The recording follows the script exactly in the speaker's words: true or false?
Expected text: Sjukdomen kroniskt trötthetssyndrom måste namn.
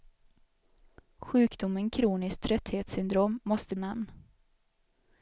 true